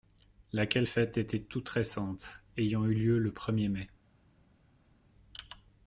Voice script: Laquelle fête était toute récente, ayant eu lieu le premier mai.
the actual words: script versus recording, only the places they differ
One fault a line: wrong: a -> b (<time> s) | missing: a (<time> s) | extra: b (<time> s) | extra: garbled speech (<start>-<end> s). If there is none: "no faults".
no faults